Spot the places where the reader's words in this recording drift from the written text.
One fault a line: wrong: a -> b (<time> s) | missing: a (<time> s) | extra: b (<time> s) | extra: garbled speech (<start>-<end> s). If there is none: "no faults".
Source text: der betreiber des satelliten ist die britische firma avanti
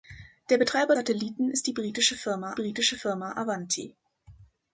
missing: des (0.9 s)
extra: britische firma (2.5 s)